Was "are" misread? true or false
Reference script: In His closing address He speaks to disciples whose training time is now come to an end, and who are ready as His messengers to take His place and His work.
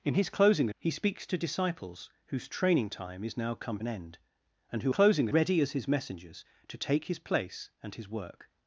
true